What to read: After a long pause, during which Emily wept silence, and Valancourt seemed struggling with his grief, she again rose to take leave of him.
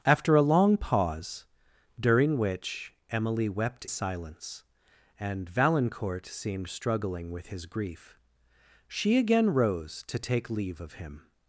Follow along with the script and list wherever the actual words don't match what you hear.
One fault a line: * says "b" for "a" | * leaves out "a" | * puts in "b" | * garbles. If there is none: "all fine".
all fine